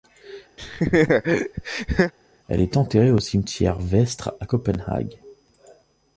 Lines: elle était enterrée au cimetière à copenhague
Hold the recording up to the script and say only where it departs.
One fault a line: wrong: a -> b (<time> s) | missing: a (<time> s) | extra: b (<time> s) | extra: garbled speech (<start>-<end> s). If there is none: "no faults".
wrong: était -> est (2.6 s)
extra: vestre (3.8 s)